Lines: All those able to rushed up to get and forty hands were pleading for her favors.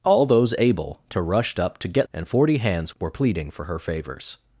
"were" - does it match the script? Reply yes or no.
yes